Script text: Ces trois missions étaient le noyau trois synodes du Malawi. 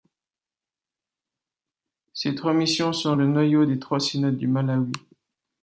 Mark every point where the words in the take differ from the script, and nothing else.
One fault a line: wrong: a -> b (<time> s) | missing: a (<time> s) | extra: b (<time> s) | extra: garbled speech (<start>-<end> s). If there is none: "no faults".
wrong: étaient -> sont (2.9 s)
extra: des (3.6 s)